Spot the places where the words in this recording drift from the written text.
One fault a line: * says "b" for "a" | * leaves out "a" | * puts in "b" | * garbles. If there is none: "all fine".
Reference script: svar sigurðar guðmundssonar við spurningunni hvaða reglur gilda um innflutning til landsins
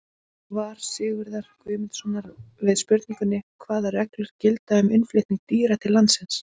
* puts in "dýra"